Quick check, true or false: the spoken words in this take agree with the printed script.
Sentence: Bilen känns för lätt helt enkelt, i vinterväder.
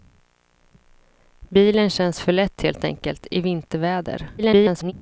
false